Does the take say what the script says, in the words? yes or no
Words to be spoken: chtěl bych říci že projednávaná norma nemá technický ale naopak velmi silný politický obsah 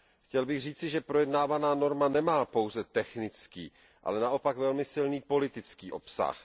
no